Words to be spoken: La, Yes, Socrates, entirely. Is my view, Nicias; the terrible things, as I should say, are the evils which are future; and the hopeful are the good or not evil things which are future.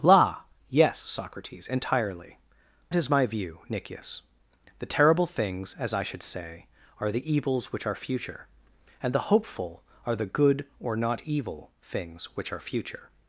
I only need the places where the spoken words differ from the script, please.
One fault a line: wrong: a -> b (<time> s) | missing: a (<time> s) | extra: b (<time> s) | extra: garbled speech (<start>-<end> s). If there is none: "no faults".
no faults